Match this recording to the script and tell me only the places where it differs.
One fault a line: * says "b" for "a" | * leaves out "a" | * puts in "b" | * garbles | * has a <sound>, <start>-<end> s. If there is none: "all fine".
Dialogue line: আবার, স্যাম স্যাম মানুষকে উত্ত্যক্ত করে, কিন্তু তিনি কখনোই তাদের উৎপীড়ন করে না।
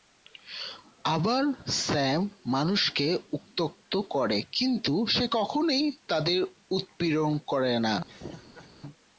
* leaves out "স্যাম"
* says "সে" for "তিনি"
* has a laugh, 8.1-8.7 s